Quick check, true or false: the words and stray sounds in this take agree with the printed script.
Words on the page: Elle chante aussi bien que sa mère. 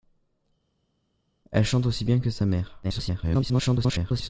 false